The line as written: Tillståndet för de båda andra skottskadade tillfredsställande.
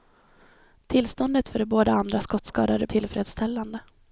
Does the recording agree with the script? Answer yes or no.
yes